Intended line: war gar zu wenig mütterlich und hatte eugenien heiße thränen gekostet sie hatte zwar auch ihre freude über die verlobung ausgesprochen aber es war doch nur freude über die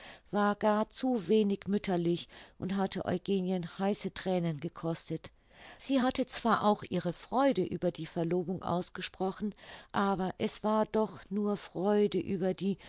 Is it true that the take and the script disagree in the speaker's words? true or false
false